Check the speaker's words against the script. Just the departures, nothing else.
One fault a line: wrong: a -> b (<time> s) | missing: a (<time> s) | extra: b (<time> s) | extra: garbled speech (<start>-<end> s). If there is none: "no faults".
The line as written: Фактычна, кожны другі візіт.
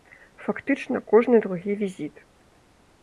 no faults